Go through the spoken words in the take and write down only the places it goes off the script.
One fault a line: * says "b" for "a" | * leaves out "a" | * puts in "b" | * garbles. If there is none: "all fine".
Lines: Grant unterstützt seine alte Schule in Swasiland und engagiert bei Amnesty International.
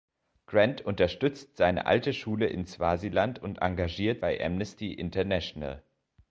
all fine